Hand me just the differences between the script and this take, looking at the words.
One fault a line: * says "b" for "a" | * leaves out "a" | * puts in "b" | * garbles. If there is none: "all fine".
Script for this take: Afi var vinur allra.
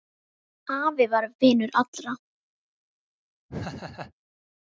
all fine